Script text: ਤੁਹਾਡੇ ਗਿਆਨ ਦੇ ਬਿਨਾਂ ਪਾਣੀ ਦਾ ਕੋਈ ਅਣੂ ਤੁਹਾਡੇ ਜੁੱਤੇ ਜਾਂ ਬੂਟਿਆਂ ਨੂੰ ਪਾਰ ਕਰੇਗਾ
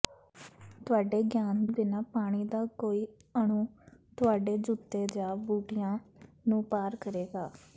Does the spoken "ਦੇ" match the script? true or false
false